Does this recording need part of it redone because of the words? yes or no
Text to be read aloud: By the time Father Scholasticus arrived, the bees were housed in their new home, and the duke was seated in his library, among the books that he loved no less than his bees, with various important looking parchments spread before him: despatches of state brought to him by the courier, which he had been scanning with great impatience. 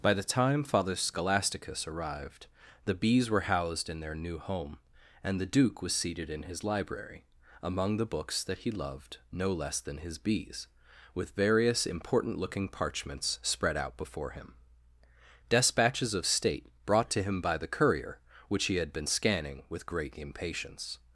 yes